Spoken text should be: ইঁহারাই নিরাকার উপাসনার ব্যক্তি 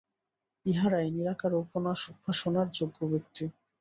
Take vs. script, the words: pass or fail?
fail